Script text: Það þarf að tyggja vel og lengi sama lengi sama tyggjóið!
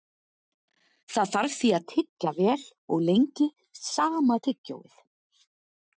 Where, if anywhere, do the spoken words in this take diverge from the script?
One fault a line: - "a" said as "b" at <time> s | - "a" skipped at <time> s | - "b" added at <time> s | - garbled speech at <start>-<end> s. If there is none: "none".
- "því" added at 1.6 s
- "lengi sama" skipped at 4.4 s